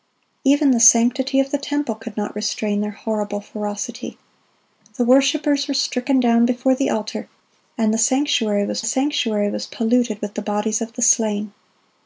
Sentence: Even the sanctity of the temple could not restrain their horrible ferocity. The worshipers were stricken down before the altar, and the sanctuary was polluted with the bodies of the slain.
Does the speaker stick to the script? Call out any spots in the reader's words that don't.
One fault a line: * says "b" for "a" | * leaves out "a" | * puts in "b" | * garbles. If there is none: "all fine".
* puts in "sanctuary was"